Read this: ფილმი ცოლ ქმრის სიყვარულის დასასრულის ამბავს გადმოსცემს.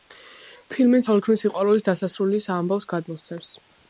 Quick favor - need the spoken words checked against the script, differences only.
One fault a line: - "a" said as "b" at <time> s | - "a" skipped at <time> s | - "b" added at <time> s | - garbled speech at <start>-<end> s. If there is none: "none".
none